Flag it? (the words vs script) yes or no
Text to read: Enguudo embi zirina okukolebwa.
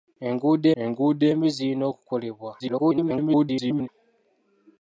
yes